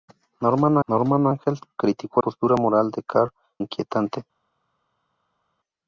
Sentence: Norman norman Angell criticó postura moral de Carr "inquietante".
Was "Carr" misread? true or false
false